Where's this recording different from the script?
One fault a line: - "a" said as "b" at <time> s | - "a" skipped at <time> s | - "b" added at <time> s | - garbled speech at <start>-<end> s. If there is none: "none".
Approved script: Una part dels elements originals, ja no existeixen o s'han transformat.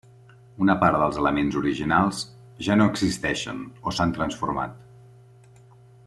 none